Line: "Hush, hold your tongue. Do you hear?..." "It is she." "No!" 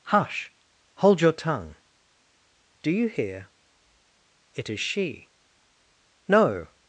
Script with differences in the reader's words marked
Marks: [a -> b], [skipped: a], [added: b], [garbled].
"Hush, hold your tongue. Do you hear?..." "It is she." "No!"